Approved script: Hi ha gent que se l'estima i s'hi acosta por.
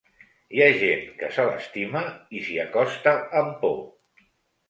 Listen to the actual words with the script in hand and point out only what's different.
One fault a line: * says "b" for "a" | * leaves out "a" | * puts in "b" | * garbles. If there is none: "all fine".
* puts in "amb"